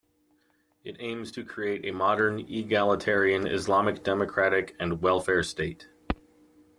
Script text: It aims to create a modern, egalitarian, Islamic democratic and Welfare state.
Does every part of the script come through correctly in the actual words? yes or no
yes